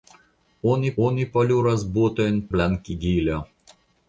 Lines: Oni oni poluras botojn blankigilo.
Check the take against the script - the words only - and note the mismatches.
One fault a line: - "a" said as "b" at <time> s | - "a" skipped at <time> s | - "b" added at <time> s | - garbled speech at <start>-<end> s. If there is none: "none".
none